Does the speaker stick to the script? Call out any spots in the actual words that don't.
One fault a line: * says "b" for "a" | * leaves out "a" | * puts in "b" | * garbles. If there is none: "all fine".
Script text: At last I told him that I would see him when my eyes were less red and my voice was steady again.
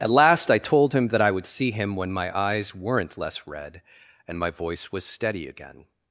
* says "weren't" for "were"